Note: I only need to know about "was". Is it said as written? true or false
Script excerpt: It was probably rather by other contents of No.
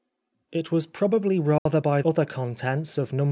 true